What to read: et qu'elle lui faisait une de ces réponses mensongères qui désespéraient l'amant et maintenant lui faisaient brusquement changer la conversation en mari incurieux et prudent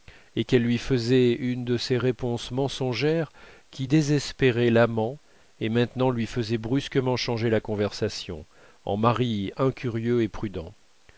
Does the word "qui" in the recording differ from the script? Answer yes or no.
no